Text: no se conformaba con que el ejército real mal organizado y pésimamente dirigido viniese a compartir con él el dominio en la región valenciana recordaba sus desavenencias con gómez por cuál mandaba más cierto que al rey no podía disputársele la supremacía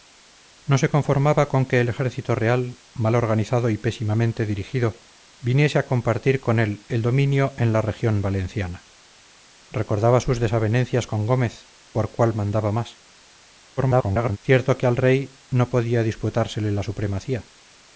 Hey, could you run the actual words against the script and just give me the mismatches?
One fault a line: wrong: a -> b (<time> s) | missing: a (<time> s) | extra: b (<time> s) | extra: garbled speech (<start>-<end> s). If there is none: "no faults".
extra: garbled speech (13.8-14.4 s)